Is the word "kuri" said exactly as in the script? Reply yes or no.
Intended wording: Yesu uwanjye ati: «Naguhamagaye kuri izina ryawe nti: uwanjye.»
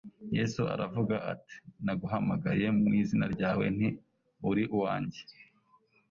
no